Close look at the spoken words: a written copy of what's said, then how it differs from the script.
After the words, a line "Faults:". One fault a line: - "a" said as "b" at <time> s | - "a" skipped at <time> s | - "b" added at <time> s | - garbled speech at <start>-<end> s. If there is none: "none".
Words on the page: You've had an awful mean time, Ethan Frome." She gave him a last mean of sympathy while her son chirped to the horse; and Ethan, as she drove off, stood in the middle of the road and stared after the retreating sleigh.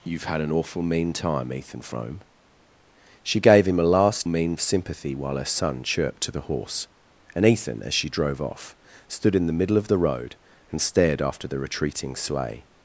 You've had an awful mean time, Ethan Frome." She gave him a last mean of sympathy while her son chirped to the horse; and Ethan, as she drove off, stood in the middle of the road and stared after the retreating sleigh.
Faults:
none